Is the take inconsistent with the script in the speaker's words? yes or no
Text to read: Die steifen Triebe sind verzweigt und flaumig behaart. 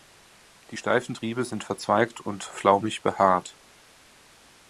no